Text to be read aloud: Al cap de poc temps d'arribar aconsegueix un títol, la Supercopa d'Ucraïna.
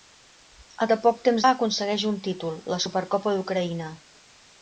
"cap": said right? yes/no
no